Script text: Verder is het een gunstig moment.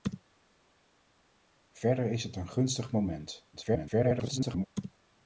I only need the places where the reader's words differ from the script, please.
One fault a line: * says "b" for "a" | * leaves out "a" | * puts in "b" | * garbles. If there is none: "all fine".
* garbles